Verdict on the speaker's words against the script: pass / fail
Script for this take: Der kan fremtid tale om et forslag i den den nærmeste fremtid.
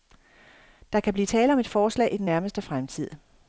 fail